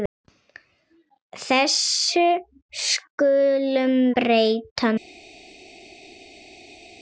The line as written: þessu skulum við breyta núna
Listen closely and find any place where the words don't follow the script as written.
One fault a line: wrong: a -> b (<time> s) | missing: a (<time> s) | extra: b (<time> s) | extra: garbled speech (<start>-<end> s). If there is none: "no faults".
missing: við (4.0 s)